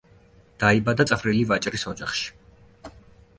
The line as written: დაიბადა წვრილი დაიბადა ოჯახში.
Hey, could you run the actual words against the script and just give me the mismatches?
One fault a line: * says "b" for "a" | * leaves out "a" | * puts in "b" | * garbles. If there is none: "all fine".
* says "ვაჭრის" for "დაიბადა"